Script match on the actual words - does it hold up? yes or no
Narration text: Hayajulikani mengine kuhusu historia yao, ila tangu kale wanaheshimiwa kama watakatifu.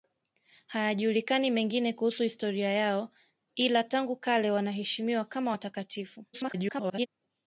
no